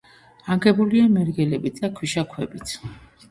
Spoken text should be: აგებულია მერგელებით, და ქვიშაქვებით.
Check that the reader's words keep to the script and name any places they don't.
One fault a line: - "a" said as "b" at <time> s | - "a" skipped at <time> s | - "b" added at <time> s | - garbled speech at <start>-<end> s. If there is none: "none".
none